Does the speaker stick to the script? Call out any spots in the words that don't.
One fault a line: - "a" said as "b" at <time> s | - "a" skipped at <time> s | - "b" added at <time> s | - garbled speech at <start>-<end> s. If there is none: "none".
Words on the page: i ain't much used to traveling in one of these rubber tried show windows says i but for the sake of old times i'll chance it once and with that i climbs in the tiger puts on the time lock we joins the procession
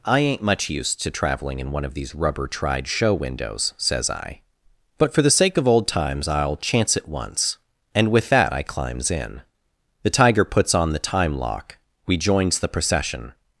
none